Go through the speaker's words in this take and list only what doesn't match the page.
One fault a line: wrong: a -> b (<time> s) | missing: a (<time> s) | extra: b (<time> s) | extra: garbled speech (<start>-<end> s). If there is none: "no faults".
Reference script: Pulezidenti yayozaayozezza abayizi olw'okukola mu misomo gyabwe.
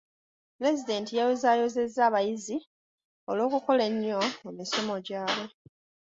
extra: ennyo (3.9 s)